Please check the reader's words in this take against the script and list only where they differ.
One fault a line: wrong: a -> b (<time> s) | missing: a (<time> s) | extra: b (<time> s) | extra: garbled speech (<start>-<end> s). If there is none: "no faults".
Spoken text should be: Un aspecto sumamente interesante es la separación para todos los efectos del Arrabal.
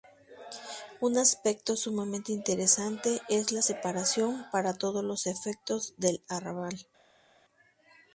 no faults